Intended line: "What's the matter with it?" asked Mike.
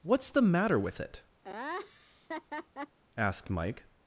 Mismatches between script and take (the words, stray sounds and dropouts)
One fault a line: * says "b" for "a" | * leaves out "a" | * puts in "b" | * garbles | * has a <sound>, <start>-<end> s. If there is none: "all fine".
* has a laugh, 1.4-3.0 s